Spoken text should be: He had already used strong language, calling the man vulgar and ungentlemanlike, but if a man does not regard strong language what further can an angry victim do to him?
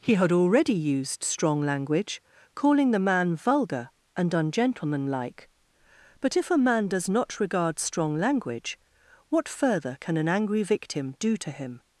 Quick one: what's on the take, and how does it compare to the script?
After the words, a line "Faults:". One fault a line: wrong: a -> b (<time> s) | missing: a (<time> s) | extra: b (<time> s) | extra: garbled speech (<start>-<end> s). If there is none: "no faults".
He had already used strong language, calling the man vulgar and ungentlemanlike, but if a man does not regard strong language what further can an angry victim do to him?
Faults:
no faults